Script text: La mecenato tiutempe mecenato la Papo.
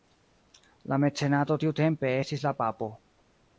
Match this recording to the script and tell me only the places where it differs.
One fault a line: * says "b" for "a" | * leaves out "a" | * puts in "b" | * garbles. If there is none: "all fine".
* says "estis" for "mecenato"